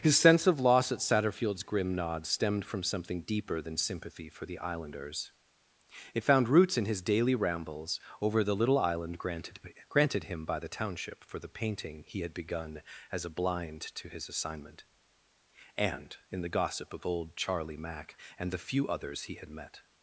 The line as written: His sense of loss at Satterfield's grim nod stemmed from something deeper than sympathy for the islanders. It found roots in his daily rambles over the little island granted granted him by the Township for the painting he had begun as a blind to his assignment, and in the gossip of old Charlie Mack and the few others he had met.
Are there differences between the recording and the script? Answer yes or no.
no